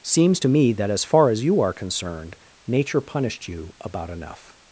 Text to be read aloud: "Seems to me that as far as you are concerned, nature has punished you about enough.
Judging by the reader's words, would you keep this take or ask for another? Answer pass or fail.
fail